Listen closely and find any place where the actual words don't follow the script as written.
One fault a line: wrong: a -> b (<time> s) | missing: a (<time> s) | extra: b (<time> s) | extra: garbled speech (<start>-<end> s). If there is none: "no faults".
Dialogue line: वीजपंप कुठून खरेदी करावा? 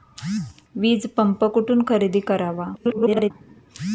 extra: garbled speech (2.7-3.3 s)